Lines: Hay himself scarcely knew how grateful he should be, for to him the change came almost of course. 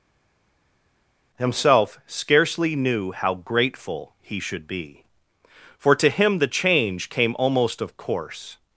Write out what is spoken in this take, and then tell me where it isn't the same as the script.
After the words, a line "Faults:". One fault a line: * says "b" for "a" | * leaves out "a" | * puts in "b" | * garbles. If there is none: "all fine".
himself scarcely knew how grateful he should be, for to him the change came almost of course.
Faults:
* leaves out "Hay"